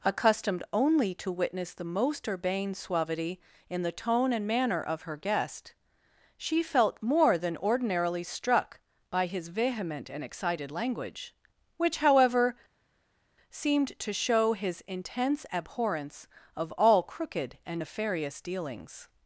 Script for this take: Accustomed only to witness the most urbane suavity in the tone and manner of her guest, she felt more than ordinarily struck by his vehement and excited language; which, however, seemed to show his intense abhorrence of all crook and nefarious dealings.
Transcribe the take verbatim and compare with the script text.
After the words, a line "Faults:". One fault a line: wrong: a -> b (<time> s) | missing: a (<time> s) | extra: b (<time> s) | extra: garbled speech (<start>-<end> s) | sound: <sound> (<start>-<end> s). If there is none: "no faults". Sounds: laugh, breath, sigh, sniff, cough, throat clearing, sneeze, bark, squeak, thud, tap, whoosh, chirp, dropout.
Accustomed only to witness the most urbane suavity in the tone and manner of her guest, she felt more than ordinarily struck by his vehement and excited language; which, however, seemed to show his intense abhorrence of all crooked and nefarious dealings.
Faults:
wrong: crook -> crooked (17.0 s)